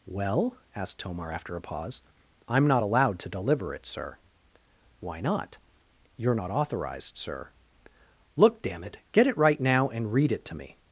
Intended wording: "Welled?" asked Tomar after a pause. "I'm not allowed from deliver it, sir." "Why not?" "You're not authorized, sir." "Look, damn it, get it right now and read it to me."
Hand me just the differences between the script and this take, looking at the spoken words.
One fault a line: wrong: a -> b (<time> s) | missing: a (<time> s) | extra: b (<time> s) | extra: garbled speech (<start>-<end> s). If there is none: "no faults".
wrong: Welled -> Well (0.1 s)
wrong: from -> to (3.2 s)